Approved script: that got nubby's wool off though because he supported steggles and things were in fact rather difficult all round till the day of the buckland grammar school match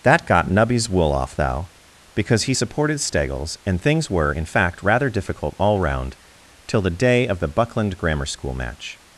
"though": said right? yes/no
no